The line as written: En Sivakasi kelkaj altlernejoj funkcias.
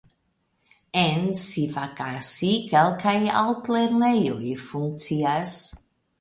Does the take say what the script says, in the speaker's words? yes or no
yes